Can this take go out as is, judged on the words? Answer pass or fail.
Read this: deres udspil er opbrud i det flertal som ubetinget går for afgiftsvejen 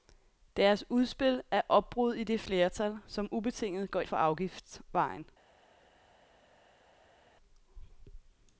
pass